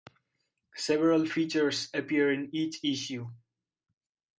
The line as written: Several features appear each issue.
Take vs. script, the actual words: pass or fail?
fail